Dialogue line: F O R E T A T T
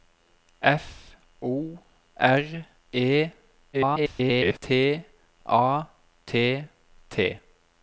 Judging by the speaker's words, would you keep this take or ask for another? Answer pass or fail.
fail